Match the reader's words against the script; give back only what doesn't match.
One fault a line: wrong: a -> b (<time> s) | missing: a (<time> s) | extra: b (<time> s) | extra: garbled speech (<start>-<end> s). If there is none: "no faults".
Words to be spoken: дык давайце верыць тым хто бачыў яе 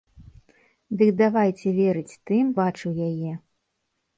missing: хто (2.5 s)